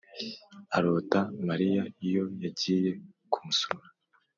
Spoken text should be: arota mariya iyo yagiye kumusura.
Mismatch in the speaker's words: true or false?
false